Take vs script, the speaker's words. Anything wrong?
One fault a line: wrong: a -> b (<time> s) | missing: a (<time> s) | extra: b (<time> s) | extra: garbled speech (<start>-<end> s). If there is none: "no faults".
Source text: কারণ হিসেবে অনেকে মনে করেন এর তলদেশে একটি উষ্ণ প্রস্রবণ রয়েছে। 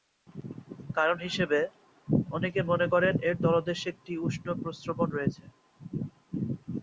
no faults